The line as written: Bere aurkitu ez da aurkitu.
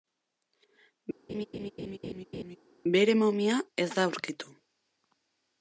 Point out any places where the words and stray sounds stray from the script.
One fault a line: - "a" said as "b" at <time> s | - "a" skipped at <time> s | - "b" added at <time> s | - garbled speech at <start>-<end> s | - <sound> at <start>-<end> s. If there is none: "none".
- laugh at 1.3-2.6 s
- "aurkitu" said as "momia" at 3.2 s